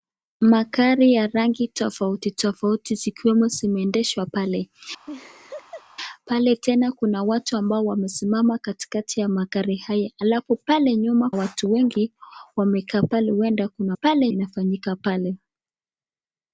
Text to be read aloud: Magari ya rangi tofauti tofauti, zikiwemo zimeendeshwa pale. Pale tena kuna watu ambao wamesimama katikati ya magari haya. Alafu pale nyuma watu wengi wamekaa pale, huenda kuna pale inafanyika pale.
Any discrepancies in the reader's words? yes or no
no